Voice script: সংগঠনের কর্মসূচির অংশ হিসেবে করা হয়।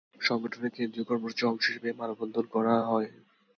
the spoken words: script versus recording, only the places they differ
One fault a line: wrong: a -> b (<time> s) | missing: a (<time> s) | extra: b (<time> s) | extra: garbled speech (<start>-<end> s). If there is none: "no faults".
extra: কেন্দ্রীয় (0.8 s)
extra: এ মানববন্ধন (1.9 s)